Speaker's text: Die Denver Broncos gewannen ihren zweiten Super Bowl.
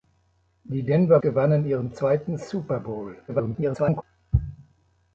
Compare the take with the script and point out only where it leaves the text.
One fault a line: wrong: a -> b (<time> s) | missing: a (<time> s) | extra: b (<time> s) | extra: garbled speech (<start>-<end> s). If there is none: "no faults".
missing: Broncos (1.2 s)
extra: garbled speech (3.3-4.0 s)